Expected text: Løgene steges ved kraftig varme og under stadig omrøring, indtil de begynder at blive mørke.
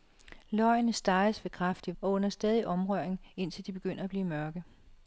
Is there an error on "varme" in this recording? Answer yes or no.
yes